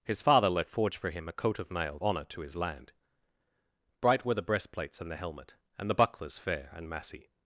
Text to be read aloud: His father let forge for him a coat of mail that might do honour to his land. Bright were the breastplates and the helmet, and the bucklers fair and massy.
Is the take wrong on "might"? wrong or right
wrong